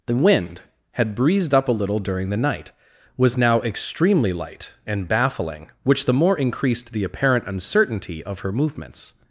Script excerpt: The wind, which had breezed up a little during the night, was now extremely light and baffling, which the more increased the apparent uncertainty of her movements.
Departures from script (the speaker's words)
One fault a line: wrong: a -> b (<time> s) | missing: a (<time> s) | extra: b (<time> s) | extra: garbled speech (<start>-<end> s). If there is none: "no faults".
missing: which (0.6 s)